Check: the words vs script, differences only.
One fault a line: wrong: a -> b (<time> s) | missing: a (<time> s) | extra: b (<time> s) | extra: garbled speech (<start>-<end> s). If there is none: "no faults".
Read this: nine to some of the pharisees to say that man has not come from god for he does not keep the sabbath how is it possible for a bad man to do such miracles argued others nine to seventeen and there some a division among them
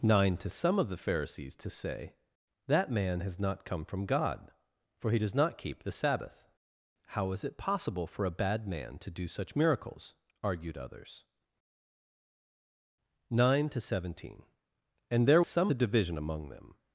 no faults